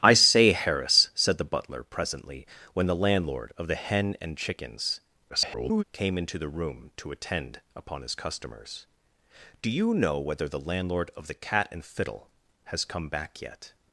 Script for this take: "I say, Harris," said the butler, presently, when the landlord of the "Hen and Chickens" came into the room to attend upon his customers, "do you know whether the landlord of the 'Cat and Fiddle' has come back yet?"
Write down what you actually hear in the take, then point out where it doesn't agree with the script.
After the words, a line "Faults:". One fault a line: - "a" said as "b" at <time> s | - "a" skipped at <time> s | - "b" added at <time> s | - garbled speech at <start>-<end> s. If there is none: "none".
"I say, Harris," said the butler, presently, when the landlord of the "Hen and Chickens" [garbled] came into the room to attend upon his customers, "do you know whether the landlord of the 'Cat and Fiddle' has come back yet?"
Faults:
- garbled speech at 5.3-5.8 s